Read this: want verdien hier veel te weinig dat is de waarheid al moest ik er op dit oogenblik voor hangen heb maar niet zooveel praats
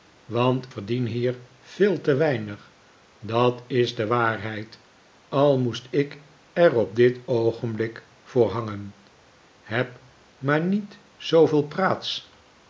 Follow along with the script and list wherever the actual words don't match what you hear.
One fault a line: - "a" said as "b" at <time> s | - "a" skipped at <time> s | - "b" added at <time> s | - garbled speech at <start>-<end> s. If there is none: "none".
none